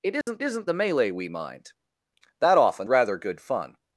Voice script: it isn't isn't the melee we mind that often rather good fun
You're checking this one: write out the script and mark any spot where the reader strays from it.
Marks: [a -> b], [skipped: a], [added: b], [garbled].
it isn't isn't the melee we mind that often rather good fun